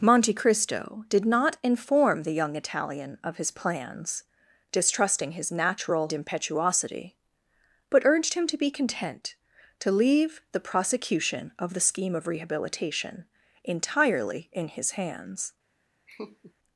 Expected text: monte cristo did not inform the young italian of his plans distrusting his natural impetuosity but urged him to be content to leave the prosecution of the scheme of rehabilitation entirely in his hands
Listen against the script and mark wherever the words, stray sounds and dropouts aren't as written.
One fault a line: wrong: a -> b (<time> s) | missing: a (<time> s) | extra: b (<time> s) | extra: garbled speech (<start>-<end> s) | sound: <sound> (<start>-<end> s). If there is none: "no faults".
sound: laugh (16.1-16.5 s)